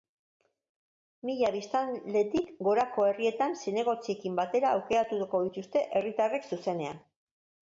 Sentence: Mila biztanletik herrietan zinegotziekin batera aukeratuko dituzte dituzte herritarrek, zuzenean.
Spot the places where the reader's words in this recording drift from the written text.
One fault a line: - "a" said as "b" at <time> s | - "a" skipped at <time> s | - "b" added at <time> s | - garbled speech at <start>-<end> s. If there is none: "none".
- "gorako" added at 2.7 s
- "dituzte" skipped at 5.9 s